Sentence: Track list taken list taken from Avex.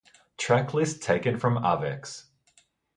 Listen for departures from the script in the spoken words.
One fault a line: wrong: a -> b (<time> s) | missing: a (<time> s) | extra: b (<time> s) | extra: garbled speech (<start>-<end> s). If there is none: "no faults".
missing: list taken (1.4 s)